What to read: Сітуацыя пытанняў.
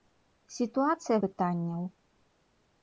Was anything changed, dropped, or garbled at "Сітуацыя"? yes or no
no